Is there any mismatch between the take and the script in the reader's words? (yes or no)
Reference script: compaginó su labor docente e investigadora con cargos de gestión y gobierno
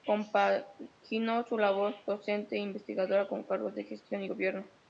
no